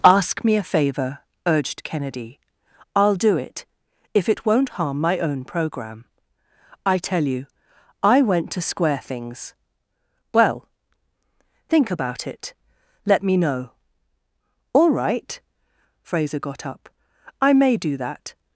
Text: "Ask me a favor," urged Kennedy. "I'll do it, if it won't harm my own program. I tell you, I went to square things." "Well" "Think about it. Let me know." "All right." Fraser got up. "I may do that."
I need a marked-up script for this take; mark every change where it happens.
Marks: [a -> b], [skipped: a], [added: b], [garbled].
"Ask me a favor," urged Kennedy. "I'll do it, if it won't harm my own program. I tell you, I went to square things." "Well" "Think about it. Let me know." "All right." Fraser got up. "I may do that."